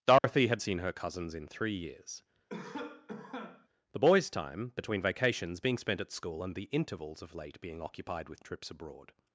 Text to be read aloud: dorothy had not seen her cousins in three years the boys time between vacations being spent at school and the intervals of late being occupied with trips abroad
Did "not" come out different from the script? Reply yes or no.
yes